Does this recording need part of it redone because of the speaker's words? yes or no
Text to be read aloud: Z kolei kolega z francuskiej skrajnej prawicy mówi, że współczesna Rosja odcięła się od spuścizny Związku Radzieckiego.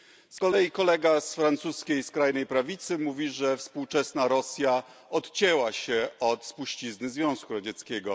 no